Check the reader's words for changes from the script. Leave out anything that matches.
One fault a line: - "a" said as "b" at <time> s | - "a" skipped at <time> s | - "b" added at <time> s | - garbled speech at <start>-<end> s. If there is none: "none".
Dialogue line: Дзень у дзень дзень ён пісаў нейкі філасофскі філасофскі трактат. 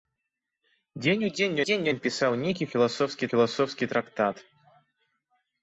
none